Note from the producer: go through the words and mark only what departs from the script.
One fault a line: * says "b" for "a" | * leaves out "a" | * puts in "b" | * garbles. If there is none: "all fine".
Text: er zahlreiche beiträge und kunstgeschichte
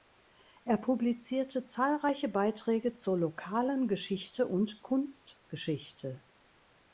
* puts in "publizierte"
* puts in "zur lokalen geschichte"